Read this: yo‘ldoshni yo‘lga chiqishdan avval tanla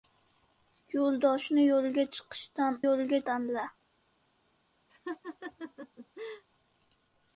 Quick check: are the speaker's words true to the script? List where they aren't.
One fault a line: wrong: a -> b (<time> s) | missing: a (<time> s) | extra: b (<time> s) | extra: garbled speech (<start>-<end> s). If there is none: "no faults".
wrong: avval -> yo‘lga (2.8 s)